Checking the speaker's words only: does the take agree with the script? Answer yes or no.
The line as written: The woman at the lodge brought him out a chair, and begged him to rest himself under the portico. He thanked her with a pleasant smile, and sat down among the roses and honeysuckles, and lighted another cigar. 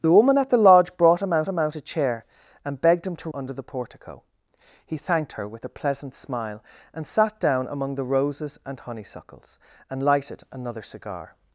no